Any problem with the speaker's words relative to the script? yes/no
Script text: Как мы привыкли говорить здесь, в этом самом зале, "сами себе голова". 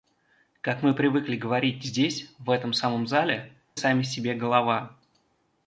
no